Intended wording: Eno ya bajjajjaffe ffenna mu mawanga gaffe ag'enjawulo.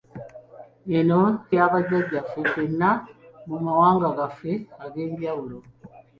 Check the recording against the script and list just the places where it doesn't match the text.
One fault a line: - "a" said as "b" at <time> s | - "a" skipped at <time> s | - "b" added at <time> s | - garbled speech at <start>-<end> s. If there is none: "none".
none